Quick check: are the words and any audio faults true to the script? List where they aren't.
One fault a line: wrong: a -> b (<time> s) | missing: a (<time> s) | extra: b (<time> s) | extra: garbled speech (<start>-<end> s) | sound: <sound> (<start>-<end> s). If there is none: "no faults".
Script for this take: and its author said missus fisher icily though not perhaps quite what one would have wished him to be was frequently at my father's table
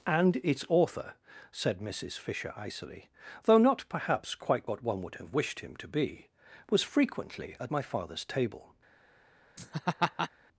sound: laugh (9.6-10.3 s)